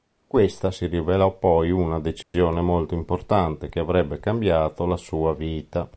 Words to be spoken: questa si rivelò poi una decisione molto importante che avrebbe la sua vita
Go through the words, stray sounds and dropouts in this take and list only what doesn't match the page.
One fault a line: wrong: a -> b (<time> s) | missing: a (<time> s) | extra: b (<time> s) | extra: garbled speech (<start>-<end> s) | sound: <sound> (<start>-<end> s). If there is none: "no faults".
sound: dropout (2.2-2.3 s)
extra: cambiato (4.2 s)